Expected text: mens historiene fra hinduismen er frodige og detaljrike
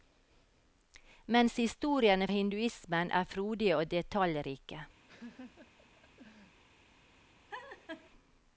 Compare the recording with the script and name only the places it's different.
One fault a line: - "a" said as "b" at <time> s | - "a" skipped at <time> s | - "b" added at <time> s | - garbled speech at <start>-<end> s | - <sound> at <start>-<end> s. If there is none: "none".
- "fra" skipped at 2.3 s
- laugh at 5.1-6.6 s
- laugh at 7.5-8.1 s